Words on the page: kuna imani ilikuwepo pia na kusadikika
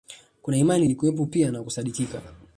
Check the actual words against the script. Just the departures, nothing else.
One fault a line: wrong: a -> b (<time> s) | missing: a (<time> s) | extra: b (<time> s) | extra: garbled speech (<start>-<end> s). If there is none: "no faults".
no faults